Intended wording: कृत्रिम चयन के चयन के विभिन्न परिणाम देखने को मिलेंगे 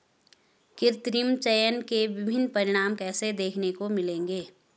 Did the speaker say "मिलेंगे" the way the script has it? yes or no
yes